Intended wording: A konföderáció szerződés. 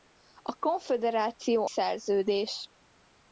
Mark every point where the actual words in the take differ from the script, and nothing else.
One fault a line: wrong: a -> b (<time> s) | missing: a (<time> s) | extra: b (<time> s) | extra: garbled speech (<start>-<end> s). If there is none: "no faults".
no faults